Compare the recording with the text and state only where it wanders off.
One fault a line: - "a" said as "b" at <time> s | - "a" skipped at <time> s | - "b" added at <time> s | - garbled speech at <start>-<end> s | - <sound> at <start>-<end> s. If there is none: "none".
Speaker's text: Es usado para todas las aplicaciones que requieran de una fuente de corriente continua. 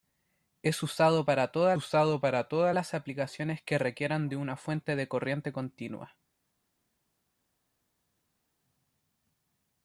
- "usado para todas" added at 1.7 s